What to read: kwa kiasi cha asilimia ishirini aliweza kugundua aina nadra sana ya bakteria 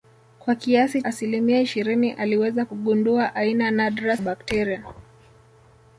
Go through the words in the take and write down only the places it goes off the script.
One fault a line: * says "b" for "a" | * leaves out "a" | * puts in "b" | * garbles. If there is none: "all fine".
* leaves out "cha"
* leaves out "sana ya"